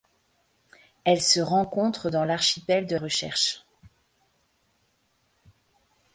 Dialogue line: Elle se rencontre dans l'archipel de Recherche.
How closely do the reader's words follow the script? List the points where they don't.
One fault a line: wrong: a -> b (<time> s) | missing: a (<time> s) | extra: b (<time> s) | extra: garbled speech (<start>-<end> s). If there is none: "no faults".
no faults